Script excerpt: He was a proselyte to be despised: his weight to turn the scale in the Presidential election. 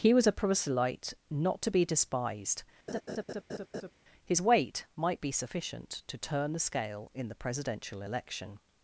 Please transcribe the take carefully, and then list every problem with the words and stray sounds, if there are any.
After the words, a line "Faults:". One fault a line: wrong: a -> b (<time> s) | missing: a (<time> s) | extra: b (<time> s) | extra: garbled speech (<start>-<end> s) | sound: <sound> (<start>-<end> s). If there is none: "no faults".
He was a proselyte not to be despised: his weight might be sufficient to turn the scale in the Presidential election.
Faults:
extra: not (1.3 s)
sound: laugh (2.9-3.9 s)
extra: might be sufficient (5.0 s)